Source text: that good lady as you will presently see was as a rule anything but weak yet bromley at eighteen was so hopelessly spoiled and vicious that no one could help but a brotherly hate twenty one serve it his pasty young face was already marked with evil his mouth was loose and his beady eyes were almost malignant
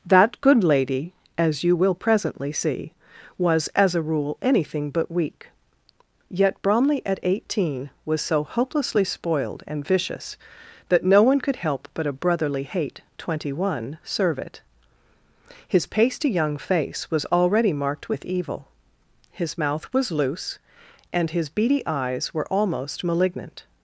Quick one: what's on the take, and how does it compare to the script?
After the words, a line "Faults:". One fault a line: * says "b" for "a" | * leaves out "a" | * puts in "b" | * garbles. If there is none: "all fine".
that good lady as you will presently see was as a rule anything but weak yet bromley at eighteen was so hopelessly spoiled and vicious that no one could help but a brotherly hate twenty one serve it his pasty young face was already marked with evil his mouth was loose and his beady eyes were almost malignant
Faults:
all fine